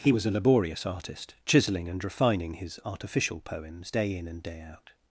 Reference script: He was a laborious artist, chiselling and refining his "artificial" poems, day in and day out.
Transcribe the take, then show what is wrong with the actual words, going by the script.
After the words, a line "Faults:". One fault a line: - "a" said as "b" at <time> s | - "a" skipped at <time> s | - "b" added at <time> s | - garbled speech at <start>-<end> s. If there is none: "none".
He was a laborious artist, chiselling and refining his "artificial" poems, day in and day out.
Faults:
none